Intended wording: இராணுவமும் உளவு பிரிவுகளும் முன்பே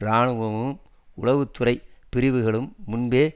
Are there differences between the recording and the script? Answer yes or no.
yes